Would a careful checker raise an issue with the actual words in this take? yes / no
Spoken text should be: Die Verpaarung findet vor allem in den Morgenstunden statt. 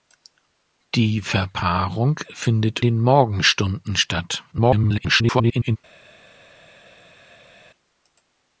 yes